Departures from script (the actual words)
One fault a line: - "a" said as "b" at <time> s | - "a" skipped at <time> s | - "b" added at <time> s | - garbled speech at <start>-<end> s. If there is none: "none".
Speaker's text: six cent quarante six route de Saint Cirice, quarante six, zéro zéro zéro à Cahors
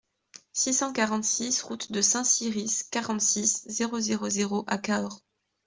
none